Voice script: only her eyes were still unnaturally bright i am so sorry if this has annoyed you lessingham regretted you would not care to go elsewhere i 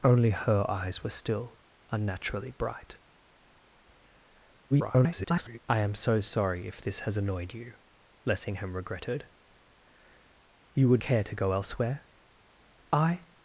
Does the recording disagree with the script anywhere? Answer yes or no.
yes